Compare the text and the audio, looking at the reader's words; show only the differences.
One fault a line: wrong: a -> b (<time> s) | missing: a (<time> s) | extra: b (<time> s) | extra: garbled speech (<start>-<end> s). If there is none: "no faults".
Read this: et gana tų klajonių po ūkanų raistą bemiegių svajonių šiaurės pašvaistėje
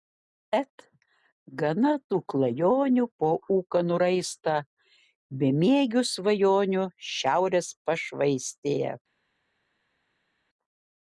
no faults